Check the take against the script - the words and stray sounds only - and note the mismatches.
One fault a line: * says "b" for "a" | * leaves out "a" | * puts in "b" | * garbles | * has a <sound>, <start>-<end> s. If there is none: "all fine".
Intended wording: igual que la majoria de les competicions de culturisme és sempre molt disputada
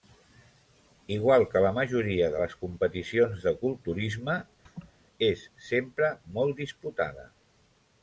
* has a laugh, 4.7-4.9 s